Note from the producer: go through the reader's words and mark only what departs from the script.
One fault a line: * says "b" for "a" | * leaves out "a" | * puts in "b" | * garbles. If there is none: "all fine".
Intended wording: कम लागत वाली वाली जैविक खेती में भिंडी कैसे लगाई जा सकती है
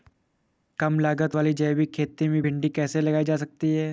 * leaves out "वाली"